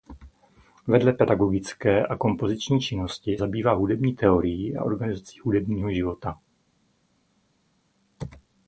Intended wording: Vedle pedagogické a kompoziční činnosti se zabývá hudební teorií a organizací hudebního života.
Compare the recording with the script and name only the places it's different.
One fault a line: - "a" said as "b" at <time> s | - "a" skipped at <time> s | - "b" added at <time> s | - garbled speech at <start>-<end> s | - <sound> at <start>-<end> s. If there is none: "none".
- "se" skipped at 3.4 s